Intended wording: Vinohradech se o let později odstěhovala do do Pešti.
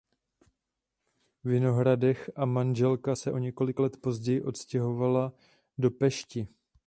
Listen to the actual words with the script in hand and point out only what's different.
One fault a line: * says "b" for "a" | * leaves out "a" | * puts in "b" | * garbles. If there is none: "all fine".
* puts in "a manželka"
* puts in "několik"
* leaves out "do"